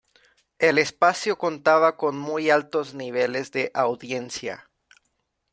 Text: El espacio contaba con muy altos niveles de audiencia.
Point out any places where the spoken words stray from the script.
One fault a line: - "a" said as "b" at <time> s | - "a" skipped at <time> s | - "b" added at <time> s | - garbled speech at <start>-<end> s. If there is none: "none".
none